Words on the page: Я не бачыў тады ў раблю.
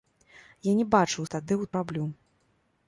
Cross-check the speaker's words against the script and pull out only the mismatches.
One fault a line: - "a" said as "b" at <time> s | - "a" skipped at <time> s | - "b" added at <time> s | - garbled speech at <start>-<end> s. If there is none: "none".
none